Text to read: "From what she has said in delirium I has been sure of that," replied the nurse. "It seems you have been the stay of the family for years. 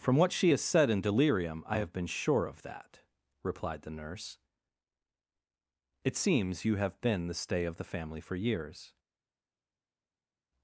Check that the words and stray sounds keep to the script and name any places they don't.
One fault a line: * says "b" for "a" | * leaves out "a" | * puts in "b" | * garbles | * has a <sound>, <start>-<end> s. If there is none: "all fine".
* says "have" for "has"